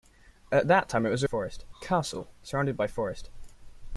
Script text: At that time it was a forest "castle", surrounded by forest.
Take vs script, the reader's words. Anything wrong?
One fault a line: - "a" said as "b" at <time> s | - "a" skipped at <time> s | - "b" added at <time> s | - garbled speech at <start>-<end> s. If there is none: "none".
none